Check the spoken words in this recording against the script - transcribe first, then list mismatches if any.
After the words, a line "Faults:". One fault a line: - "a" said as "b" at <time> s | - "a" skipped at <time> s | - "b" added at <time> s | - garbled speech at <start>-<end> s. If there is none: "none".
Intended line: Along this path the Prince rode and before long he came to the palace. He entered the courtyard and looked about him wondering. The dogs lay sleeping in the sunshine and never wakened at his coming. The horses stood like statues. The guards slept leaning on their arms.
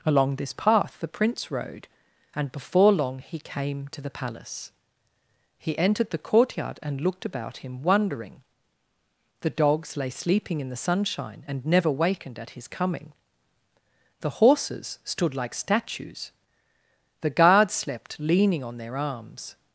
Along this path the Prince rode and before long he came to the palace. He entered the courtyard and looked about him wondering. The dogs lay sleeping in the sunshine and never wakened at his coming. The horses stood like statues. The guards slept leaning on their arms.
Faults:
none